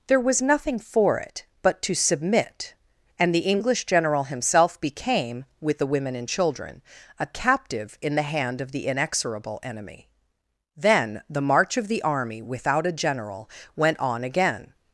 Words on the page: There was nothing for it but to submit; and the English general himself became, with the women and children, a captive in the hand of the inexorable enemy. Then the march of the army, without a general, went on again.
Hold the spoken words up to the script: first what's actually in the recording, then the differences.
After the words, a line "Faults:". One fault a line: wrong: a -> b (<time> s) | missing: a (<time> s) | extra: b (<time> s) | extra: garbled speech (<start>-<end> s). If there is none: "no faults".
There was nothing for it but to submit; and the English general himself became, with the women and children, a captive in the hand of the inexorable enemy. Then the march of the army, without a general, went on again.
Faults:
no faults